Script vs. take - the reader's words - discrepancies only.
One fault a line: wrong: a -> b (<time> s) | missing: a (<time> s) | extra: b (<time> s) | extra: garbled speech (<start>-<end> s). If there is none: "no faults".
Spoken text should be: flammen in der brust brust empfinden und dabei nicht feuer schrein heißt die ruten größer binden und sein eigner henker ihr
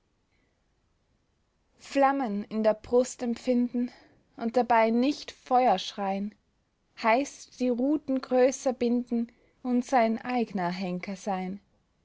missing: brust (3.2 s)
wrong: ihr -> sein (11.2 s)